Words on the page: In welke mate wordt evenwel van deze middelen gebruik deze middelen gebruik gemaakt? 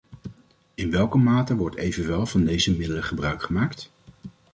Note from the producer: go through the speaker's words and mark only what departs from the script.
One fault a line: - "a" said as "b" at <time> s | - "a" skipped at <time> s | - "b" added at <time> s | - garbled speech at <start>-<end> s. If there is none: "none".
- "deze middelen gebruik" skipped at 3.4 s